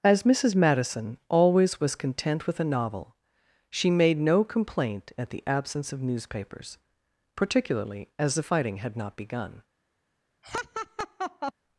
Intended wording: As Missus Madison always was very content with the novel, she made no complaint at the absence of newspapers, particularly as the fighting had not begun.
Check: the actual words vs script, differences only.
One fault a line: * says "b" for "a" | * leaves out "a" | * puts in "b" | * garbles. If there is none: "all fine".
* leaves out "very"
* says "a" for "the"